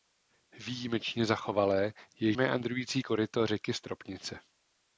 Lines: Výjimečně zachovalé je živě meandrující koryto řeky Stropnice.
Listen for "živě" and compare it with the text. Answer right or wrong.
wrong